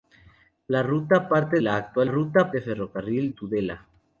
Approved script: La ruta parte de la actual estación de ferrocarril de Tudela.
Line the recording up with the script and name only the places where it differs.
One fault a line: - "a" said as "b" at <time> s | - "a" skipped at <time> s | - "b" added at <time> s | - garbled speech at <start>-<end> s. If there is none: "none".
- "de" skipped at 1.6 s
- "estación" said as "ruta" at 2.1 s
- "de" skipped at 3.3 s